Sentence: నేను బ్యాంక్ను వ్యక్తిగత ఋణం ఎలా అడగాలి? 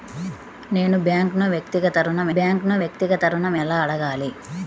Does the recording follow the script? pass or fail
fail